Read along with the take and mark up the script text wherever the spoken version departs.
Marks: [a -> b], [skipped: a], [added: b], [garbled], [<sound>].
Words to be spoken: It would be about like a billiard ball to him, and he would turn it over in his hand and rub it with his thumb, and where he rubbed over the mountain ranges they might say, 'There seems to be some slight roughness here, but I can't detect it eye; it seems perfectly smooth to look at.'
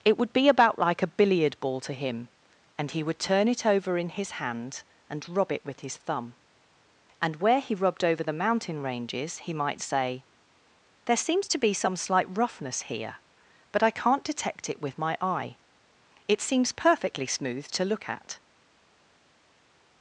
It would be about like a billiard ball to him, and he would turn it over in his hand and rub it with his thumb, and where he rubbed over the mountain ranges [they -> he] might say, 'There seems to be some slight roughness here, but I can't detect it [added: with my] eye; it seems perfectly smooth to look at.'